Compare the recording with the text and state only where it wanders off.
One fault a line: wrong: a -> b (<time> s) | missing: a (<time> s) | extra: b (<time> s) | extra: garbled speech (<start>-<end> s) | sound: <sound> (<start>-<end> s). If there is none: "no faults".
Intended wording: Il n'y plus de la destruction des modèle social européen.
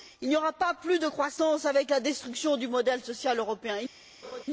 extra: aura pas (0.3 s)
extra: croissance avec (1.0 s)
wrong: des -> du (2.6 s)
sound: laugh (4.2-4.4 s)